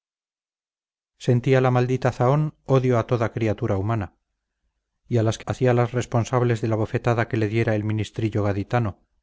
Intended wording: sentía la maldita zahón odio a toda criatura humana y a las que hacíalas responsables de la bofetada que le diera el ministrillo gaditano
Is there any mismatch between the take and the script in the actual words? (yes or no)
no